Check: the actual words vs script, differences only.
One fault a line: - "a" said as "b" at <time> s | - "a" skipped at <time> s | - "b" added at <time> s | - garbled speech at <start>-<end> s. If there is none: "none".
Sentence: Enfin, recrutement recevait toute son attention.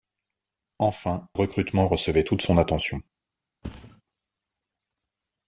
none